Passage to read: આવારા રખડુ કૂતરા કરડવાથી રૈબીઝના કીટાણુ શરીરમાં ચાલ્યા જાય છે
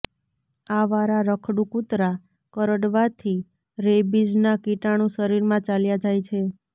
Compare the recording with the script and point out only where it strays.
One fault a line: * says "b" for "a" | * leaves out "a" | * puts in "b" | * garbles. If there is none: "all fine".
all fine